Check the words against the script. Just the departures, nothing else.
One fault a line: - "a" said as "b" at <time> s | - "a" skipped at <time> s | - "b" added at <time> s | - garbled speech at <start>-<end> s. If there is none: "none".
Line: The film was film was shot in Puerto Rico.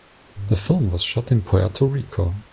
- "film was" skipped at 1.0 s